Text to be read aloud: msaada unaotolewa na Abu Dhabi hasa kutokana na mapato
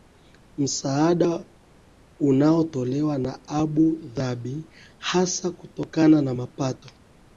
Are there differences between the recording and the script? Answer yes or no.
no